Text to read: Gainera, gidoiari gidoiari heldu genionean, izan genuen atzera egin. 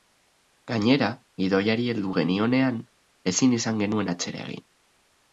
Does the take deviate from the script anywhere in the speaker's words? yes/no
yes